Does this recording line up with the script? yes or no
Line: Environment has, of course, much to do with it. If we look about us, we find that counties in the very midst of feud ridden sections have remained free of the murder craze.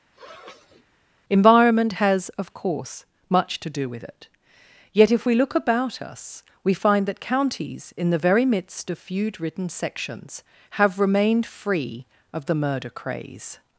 no